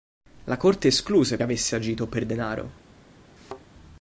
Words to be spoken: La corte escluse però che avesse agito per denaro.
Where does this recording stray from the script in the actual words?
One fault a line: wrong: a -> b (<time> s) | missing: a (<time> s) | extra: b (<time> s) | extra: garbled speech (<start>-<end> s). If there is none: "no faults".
missing: però che (1.4 s)